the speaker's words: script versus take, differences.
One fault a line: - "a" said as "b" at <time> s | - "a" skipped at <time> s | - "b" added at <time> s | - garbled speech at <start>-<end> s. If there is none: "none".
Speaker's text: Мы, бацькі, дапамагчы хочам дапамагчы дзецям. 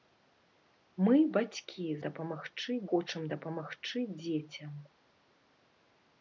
none